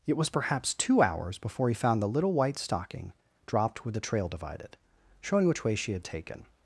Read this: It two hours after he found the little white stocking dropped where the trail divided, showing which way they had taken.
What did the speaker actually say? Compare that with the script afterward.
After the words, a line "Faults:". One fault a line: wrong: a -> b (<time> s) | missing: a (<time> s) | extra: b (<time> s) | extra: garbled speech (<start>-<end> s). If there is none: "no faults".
It was perhaps two hours before he found the little white stocking dropped where the trail divided, showing which way she had taken.
Faults:
extra: was perhaps (0.2 s)
wrong: after -> before (1.4 s)
wrong: they -> she (5.8 s)